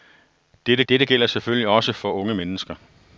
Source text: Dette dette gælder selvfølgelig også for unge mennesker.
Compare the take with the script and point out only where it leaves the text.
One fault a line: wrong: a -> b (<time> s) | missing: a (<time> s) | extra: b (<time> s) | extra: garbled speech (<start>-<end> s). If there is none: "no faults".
no faults